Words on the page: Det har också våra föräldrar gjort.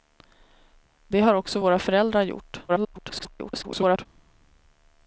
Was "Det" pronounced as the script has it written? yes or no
yes